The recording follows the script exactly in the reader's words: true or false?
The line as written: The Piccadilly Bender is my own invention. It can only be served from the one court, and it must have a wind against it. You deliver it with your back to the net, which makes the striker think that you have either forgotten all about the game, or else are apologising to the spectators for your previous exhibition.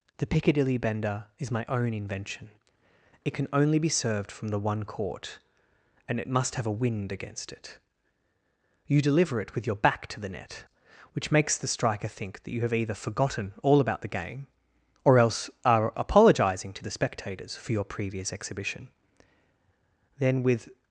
false